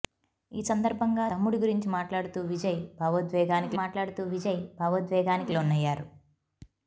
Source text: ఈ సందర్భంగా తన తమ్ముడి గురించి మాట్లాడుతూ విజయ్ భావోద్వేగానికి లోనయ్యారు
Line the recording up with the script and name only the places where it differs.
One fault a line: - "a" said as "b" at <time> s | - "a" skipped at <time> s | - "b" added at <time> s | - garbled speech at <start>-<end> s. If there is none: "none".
- "తన" skipped at 1.2 s
- "మాట్లాడుతూ విజయ్ భావోద్వేగానికి" added at 3.7 s